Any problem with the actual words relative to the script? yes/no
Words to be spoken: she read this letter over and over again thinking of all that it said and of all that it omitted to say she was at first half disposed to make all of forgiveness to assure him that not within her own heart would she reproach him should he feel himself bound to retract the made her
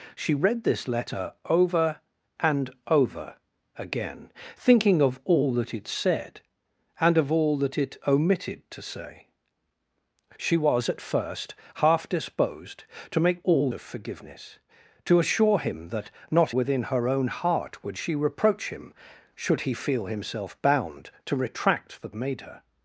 no